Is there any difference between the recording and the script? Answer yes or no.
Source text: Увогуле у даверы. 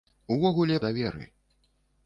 no